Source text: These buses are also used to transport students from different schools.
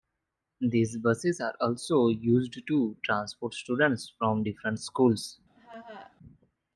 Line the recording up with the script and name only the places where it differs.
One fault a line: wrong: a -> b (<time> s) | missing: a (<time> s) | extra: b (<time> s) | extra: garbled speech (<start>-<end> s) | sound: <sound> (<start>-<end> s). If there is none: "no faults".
sound: laugh (5.6-6.2 s)